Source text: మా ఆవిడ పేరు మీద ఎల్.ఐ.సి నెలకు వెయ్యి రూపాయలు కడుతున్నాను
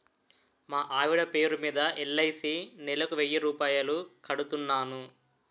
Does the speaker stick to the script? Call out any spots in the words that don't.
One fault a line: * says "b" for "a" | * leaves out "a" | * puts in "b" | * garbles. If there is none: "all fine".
all fine